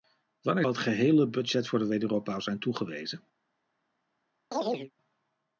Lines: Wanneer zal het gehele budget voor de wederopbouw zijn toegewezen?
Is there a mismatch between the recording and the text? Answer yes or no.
yes